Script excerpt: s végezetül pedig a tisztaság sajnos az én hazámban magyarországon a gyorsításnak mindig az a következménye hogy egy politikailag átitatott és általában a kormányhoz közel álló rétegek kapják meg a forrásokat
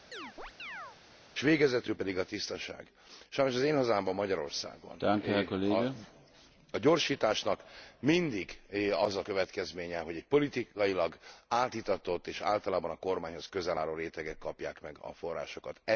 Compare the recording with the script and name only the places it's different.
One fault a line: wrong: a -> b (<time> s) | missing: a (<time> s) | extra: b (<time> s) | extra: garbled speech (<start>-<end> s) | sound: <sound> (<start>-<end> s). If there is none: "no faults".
sound: chirp (0.1-1.0 s)